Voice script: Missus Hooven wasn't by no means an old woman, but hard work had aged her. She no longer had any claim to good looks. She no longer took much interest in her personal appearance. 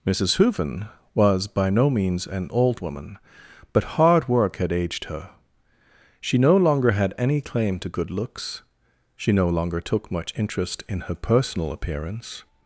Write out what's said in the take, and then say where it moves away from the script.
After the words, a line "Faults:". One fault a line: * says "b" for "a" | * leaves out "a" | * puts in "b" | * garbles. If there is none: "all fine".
Missus Hooven was by no means an old woman, but hard work had aged her. She no longer had any claim to good looks. She no longer took much interest in her personal appearance.
Faults:
* says "was" for "wasn't"